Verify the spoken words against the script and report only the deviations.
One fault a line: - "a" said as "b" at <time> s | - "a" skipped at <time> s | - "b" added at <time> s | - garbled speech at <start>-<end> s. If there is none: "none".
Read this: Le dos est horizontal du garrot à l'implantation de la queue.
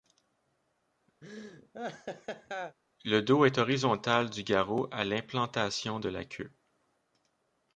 none